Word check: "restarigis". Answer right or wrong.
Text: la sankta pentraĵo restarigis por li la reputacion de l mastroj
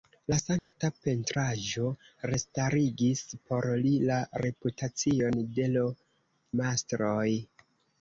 right